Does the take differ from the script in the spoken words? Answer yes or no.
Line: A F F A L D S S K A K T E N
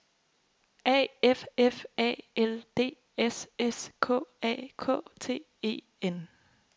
no